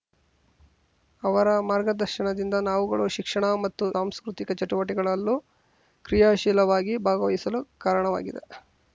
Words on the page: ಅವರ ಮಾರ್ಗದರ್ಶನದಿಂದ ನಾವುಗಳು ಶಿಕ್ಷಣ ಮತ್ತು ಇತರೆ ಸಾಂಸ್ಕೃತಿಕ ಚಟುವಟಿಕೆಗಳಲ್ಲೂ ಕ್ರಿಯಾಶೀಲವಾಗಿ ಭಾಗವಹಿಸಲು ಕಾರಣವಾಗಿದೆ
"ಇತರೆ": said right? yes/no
no